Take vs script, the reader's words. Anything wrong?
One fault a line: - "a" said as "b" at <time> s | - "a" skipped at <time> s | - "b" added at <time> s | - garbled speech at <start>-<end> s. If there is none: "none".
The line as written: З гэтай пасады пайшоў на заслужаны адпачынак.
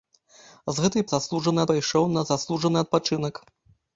- "пасады" said as "заслужаны" at 1.1 s